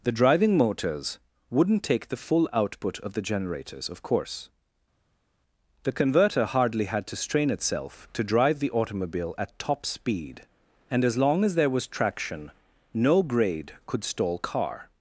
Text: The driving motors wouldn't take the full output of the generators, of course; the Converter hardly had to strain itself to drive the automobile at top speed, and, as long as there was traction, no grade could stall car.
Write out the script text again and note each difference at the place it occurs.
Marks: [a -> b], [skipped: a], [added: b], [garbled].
The driving motors wouldn't take the full output of the generators, of course; the Converter hardly had to strain itself to drive the automobile at top speed, and, as long as there was traction, no grade could stall car.